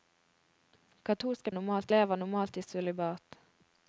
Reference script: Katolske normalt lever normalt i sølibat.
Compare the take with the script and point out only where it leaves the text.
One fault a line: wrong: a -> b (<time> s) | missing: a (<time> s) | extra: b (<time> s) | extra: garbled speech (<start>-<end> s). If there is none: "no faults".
no faults